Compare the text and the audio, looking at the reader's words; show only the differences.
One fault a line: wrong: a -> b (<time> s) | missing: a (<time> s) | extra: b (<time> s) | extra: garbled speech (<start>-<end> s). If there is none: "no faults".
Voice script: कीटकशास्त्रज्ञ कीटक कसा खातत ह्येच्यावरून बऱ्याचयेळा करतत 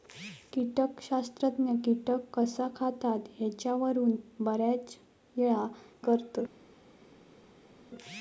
no faults